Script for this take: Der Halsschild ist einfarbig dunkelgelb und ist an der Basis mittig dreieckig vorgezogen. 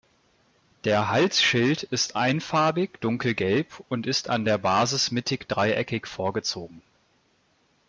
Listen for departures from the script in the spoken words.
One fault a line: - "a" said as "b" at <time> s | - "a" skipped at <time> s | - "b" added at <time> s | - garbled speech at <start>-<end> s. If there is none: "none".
none